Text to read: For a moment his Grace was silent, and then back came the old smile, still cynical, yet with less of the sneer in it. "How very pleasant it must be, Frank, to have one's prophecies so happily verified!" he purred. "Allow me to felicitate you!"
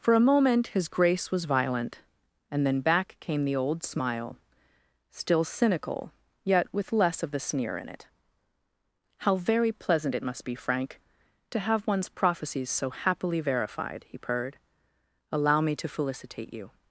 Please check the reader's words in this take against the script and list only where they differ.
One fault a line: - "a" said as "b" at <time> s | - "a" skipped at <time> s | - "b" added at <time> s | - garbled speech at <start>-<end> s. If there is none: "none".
- "silent" said as "violent" at 1.4 s